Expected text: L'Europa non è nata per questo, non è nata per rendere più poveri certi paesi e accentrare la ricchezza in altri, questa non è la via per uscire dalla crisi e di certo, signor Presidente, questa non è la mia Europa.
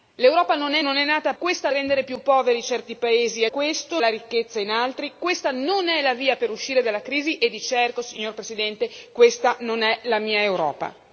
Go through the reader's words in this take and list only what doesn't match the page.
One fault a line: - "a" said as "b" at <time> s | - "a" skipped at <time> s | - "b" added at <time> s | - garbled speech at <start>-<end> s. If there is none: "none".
- "nata per questo" skipped at 0.8 s
- "per" said as "questa" at 1.4 s
- "accentrare" said as "questo" at 3.5 s